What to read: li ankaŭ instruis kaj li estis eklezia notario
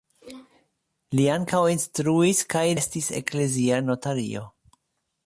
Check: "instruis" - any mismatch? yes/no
no